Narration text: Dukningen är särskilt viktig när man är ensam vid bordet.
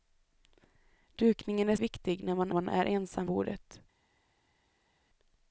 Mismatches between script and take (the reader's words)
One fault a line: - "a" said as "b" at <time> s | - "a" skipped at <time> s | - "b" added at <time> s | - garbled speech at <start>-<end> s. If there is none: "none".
- "särskilt" skipped at 1.8 s
- "man" added at 2.5 s
- "vid" skipped at 3.3 s